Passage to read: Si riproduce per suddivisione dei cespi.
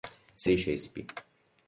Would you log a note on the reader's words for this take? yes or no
yes